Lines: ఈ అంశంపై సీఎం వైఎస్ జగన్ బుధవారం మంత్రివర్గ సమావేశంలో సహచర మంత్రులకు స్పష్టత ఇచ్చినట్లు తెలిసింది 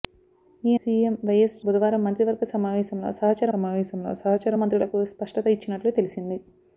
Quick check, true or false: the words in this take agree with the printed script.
false